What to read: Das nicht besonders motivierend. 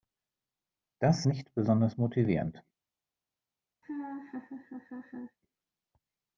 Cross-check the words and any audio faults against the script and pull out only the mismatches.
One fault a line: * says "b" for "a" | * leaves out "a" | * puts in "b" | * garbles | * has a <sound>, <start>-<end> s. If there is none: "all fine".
* has a laugh, 3.8-5.4 s